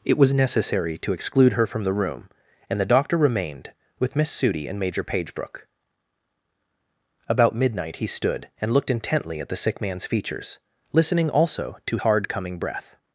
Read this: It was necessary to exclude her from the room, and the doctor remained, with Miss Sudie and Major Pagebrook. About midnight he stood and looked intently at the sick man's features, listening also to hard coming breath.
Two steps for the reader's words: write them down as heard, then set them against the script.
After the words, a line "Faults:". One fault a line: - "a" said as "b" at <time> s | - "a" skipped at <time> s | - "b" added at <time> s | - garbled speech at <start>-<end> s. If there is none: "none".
It was necessary to exclude her from the room, and the doctor remained, with Miss Sudie and Major Pagebrook. About midnight he stood and looked intently at the sick man's features, listening also to hard coming breath.
Faults:
none